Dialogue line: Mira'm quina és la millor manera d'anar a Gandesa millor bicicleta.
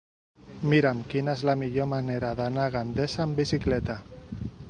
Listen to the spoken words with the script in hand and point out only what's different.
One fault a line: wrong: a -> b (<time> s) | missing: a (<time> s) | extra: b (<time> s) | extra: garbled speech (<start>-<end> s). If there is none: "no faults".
wrong: millor -> amb (3.3 s)